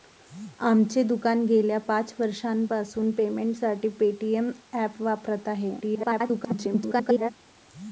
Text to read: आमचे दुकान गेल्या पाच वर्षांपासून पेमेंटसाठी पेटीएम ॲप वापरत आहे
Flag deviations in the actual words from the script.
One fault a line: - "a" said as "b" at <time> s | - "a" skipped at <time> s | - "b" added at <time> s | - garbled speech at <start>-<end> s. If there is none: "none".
- garbled speech at 5.8-7.3 s